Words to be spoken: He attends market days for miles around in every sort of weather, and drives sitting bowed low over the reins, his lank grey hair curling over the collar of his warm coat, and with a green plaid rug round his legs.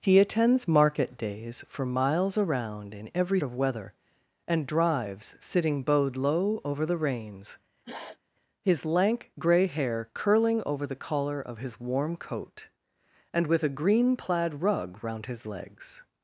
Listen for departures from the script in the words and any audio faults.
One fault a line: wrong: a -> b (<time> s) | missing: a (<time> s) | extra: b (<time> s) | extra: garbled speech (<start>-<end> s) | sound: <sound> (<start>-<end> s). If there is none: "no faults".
missing: sort (3.4 s)
sound: sniff (7.8-8.2 s)